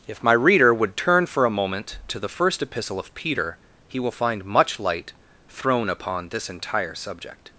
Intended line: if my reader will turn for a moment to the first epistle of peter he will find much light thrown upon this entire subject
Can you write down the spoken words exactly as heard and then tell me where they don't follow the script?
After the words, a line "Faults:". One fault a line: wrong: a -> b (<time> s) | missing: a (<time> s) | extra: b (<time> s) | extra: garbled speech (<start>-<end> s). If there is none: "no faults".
if my reader would turn for a moment to the first epistle of peter he will find much light thrown upon this entire subject
Faults:
wrong: will -> would (0.7 s)